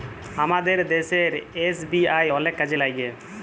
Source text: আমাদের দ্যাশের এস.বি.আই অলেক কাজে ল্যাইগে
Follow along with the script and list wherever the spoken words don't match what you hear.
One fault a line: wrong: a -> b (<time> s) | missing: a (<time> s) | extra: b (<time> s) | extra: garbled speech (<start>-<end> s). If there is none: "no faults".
no faults